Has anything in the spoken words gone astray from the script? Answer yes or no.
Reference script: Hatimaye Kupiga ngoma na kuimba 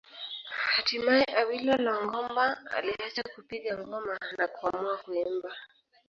yes